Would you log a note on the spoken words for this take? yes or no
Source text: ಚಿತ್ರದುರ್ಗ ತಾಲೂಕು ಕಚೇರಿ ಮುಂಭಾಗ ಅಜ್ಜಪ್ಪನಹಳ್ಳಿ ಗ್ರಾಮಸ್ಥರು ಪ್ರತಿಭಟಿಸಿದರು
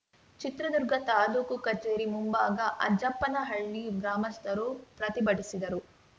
no